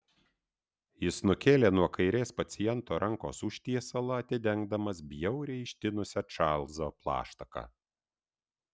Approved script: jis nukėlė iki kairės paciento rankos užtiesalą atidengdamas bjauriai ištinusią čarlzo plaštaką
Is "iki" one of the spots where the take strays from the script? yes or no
yes